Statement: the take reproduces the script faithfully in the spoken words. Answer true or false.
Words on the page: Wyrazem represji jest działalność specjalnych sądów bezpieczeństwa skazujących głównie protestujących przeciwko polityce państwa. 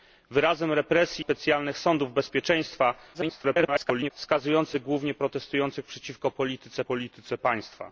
false